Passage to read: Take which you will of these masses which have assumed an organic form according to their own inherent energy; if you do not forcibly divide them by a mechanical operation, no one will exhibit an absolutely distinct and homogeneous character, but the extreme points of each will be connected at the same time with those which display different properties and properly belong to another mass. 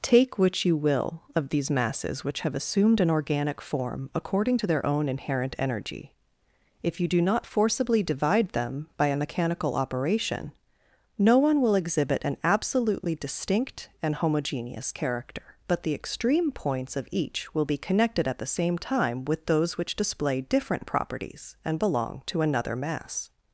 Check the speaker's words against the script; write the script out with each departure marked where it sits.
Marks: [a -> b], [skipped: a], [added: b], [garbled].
Take which you will of these masses which have assumed an organic form according to their own inherent energy; if you do not forcibly divide them by a mechanical operation, no one will exhibit an absolutely distinct and homogeneous character, but the extreme points of each will be connected at the same time with those which display different properties and [skipped: properly] belong to another mass.